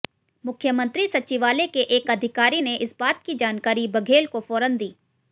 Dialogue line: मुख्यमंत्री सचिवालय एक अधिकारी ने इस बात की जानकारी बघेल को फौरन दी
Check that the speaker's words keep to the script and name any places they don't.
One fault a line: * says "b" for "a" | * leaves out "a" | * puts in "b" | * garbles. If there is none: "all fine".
* puts in "के"